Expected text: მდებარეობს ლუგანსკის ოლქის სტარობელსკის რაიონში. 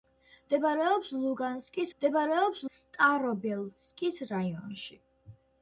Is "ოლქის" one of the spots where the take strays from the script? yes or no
yes